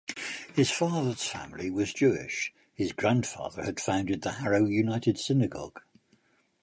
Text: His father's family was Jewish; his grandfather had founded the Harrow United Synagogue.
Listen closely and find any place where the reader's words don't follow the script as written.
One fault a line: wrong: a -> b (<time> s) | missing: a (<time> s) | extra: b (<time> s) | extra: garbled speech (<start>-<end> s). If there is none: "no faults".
no faults